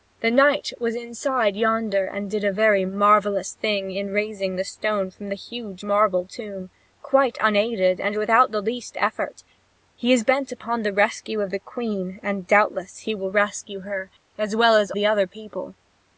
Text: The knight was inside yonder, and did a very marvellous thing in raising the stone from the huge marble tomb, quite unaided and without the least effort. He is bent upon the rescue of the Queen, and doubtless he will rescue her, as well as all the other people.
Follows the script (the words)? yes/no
no